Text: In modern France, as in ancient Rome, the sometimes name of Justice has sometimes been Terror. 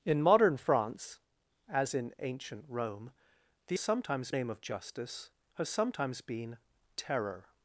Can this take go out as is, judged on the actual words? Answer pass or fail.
pass